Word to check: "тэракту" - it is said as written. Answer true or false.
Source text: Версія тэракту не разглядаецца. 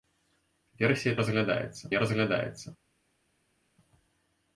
false